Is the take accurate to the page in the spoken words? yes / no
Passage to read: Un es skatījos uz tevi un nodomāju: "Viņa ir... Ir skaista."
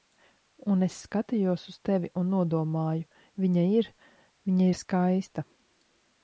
no